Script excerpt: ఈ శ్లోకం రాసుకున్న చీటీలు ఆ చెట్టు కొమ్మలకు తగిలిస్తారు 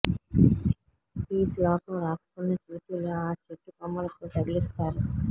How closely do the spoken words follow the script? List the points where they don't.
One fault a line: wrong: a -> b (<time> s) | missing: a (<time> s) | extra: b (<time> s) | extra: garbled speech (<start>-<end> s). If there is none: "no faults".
no faults